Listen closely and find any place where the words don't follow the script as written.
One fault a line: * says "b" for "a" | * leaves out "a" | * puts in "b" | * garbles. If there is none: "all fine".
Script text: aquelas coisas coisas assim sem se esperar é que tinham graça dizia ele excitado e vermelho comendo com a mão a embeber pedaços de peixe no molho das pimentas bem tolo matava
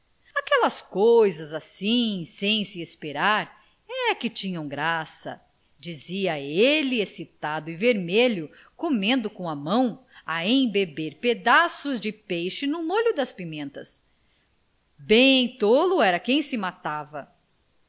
* leaves out "coisas"
* puts in "era quem se"